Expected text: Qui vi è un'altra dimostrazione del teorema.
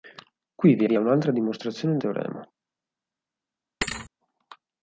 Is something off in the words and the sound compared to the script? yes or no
yes